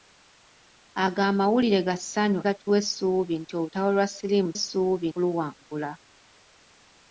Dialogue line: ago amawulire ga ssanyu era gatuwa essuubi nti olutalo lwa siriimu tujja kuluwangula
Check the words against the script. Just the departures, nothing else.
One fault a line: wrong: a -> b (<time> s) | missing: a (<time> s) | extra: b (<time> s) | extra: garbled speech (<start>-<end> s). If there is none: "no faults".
missing: era (2.4 s)
wrong: tujja -> essuubi (4.6 s)